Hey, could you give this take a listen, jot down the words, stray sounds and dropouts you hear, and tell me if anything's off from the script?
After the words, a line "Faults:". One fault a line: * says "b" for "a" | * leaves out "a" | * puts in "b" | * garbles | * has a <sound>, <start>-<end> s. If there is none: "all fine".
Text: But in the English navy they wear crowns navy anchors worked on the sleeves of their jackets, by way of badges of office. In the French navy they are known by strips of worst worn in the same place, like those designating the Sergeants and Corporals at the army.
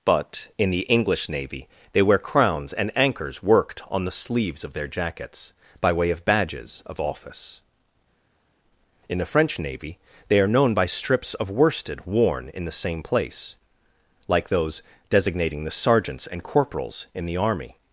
But in the English navy they wear crowns and anchors worked on the sleeves of their jackets, by way of badges of office. In the French navy they are known by strips of worsted worn in the same place, like those designating the Sergeants and Corporals in the army.
Faults:
* says "and" for "navy"
* says "worsted" for "worst"
* says "in" for "at"